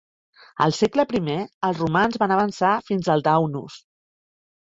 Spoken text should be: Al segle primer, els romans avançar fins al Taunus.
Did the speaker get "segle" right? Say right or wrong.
right